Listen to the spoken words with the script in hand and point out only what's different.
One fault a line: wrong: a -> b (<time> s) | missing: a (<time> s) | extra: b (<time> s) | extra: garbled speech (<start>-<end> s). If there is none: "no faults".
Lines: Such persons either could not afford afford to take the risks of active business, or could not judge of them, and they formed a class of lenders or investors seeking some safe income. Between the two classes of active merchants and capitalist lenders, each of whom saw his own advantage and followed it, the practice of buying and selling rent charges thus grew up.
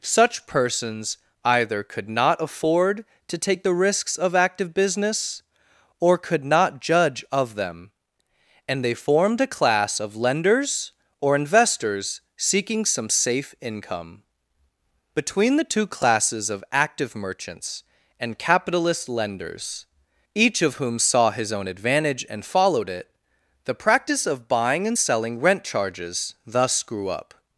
missing: afford (3.0 s)